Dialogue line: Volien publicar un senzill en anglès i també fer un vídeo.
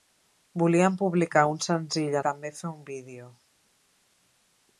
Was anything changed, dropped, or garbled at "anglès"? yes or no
yes